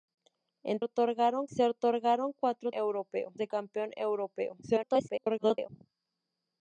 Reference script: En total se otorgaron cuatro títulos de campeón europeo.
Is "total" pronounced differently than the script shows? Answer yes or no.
yes